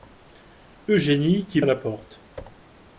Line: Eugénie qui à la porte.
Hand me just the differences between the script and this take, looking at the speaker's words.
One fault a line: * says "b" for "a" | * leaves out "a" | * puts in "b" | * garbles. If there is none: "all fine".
all fine